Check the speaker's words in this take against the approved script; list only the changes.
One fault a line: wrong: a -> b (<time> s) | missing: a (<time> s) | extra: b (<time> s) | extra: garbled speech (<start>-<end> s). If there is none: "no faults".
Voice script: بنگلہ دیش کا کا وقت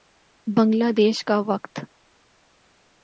missing: کا (1.4 s)